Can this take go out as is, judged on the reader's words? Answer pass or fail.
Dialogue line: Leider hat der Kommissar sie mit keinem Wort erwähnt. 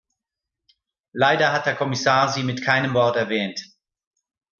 pass